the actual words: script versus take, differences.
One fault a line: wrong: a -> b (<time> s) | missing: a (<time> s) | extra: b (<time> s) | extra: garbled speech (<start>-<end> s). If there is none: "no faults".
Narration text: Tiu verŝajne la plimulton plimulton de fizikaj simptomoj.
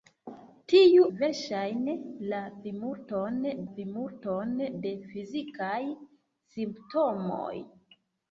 no faults